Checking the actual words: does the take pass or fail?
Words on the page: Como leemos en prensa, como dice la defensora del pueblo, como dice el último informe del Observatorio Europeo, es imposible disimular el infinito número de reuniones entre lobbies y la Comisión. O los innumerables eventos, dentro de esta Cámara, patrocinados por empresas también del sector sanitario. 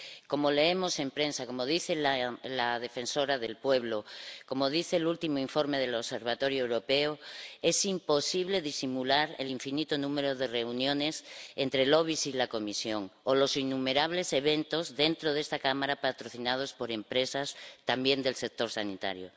pass